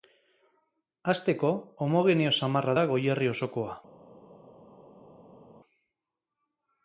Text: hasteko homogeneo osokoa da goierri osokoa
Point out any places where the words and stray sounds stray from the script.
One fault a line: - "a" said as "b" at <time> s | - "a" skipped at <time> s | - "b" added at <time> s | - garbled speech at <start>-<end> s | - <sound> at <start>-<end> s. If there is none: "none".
- "osokoa" said as "samarra" at 2.4 s